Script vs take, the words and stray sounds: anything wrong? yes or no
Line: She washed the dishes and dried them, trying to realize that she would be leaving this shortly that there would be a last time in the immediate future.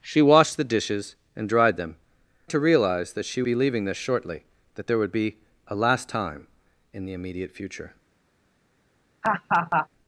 yes